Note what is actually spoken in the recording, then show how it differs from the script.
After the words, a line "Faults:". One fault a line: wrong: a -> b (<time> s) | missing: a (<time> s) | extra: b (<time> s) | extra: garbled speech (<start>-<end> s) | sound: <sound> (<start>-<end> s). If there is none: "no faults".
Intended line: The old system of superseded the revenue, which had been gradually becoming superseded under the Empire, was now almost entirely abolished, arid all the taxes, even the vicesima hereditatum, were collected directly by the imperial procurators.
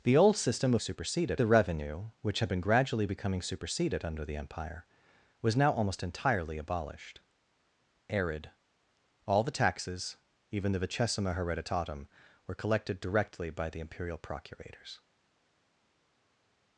The old system of superseded the revenue, which had been gradually becoming superseded under the Empire, was now almost entirely abolished, arid all the taxes, even the vicesima hereditatum, were collected directly by the imperial procurators.
Faults:
no faults